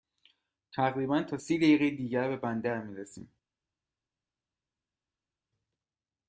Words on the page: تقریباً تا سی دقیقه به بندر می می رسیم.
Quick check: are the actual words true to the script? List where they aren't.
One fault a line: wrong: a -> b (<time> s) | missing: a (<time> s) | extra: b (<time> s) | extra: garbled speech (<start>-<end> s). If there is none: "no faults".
extra: دیگر (1.9 s)
missing: می (3.0 s)